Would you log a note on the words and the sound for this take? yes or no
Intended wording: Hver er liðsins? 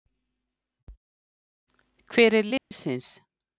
yes